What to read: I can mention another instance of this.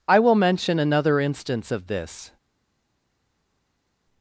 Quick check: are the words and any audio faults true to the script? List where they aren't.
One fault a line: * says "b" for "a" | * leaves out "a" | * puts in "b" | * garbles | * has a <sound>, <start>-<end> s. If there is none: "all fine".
* says "will" for "can"